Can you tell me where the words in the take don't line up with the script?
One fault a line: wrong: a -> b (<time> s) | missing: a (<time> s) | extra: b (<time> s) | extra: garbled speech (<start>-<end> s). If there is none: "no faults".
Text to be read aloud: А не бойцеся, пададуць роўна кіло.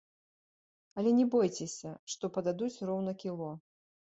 wrong: А -> Але (1.0 s)
extra: што (2.1 s)